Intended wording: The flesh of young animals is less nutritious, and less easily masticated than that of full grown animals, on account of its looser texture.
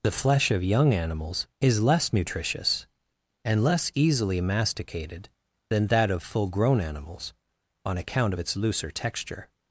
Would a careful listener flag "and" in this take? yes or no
no